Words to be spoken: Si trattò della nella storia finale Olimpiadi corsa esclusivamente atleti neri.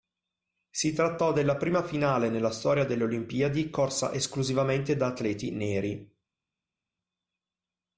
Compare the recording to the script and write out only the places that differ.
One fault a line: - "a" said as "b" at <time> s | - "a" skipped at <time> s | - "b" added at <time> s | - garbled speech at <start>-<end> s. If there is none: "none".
- "prima finale" added at 1.6 s
- "finale" said as "delle" at 2.9 s
- "da" added at 4.9 s